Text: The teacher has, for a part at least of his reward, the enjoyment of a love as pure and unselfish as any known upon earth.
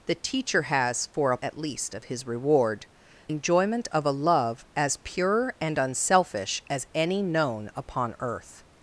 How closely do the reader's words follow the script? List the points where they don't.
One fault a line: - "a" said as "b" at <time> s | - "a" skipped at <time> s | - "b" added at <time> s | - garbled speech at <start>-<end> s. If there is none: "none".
- "part" skipped at 1.4 s
- "the" skipped at 2.9 s